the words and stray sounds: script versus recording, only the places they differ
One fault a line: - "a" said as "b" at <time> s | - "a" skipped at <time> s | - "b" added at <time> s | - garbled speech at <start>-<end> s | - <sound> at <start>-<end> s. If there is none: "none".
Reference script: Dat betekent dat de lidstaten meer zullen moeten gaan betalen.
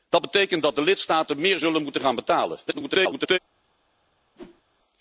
- garbled speech at 2.7-3.4 s
- whoosh at 4.3-4.6 s